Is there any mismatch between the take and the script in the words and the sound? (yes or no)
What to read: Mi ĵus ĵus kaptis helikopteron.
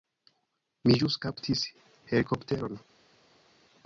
yes